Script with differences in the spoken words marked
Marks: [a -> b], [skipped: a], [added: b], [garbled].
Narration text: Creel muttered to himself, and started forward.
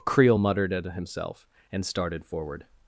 Creel muttered [to -> at] himself, and started forward.